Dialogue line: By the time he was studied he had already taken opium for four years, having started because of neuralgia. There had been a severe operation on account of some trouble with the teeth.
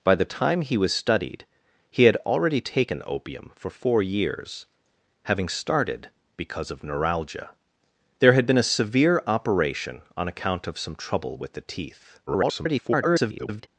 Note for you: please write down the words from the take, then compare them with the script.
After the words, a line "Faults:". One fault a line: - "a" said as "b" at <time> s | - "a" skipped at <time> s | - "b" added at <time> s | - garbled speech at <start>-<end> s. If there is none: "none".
By the time he was studied he had already taken opium for four years, having started because of neuralgia. There had been a severe operation on account of some trouble with the teeth. [garbled]
Faults:
- garbled speech at 12.3-13.7 s